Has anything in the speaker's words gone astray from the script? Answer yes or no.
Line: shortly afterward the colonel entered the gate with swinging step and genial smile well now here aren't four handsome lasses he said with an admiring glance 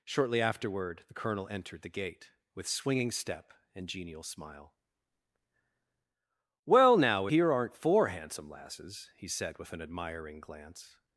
no